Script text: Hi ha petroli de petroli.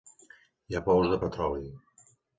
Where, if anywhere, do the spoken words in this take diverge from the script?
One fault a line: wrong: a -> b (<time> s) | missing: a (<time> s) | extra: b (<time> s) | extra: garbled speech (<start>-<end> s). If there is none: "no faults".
wrong: petroli -> pous (0.9 s)